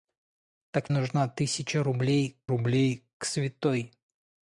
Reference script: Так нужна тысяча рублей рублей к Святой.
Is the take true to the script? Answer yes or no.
yes